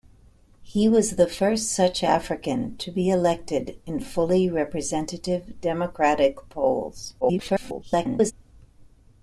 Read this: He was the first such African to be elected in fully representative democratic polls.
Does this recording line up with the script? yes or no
no